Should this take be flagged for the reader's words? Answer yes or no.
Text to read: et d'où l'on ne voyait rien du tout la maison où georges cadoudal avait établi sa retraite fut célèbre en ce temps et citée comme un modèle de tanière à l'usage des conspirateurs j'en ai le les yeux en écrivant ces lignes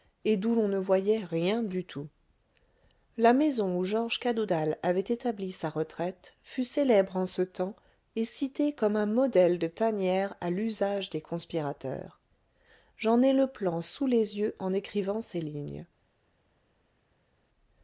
yes